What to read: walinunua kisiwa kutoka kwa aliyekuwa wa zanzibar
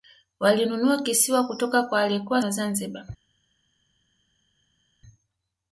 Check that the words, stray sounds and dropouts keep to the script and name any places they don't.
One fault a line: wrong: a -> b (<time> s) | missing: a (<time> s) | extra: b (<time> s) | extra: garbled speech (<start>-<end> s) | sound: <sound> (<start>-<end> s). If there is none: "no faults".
no faults